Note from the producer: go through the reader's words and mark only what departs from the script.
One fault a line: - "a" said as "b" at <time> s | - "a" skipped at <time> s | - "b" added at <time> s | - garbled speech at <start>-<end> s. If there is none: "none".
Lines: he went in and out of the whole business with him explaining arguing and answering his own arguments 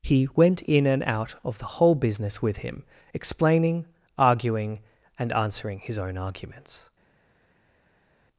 none